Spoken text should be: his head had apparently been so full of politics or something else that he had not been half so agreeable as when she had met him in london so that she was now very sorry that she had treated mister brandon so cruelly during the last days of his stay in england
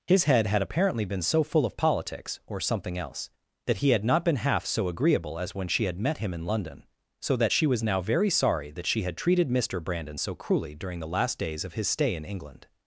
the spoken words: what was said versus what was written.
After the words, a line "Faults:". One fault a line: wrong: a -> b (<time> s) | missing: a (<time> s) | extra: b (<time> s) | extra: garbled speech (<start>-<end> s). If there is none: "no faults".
his head had apparently been so full of politics or something else that he had not been half so agreeable as when she had met him in london so that she was now very sorry that she had treated mister brandon so cruelly during the last days of his stay in england
Faults:
no faults